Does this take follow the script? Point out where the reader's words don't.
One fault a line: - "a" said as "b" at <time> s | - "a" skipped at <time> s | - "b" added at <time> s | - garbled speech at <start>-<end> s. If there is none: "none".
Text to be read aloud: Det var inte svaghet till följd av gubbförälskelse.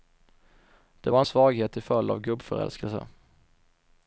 - "inte" skipped at 1.2 s